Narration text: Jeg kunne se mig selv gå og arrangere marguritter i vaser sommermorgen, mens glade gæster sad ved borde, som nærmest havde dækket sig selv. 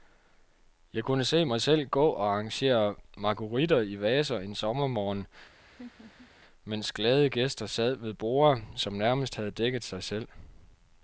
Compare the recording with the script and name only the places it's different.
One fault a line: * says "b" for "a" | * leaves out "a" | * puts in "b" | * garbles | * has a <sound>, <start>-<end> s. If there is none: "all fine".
* puts in "en"
* has a laugh, 5.6-6.3 s